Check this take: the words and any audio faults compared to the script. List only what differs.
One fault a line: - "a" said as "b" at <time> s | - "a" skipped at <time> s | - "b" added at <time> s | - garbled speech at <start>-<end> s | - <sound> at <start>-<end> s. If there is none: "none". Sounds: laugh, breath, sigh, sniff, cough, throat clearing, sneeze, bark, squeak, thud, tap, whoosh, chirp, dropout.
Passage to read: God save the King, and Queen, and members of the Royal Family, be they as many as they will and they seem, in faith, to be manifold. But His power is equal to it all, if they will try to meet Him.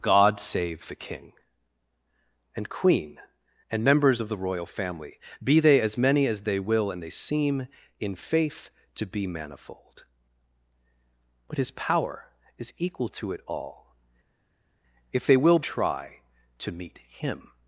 none